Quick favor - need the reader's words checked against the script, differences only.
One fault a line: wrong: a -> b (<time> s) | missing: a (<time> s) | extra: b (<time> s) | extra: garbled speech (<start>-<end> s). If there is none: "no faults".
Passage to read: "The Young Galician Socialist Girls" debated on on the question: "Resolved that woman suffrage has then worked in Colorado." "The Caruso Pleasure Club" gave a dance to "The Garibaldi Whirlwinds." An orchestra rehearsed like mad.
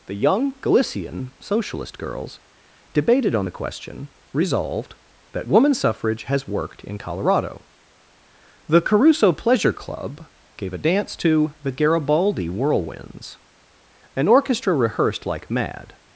missing: on (3.5 s)
missing: then (6.5 s)